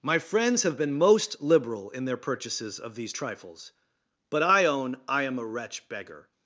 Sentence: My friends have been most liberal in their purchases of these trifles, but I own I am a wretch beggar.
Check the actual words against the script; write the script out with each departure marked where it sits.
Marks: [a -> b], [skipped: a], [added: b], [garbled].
My friends have been most liberal in their purchases of these trifles, but I own I am a wretch beggar.